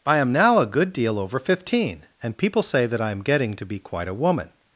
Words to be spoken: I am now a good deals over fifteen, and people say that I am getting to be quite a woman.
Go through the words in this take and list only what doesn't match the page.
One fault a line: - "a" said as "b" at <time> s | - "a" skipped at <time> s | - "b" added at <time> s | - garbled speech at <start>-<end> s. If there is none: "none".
- "deals" said as "deal" at 0.9 s